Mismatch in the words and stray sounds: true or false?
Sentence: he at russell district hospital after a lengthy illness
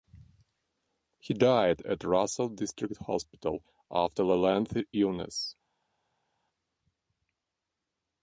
true